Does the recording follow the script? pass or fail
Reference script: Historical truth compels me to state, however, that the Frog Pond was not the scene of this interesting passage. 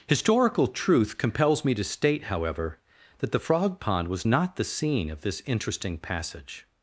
pass